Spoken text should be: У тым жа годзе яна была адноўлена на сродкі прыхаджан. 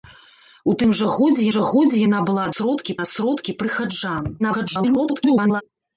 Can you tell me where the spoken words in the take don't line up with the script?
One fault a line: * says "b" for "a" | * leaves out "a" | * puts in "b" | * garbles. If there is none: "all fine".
* puts in "жа годзе"
* says "сродкі" for "адноўлена"
* garbles